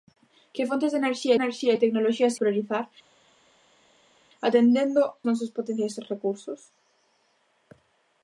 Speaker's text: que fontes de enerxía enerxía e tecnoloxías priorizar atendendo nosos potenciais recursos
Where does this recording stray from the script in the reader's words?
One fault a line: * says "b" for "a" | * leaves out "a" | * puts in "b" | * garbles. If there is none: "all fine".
all fine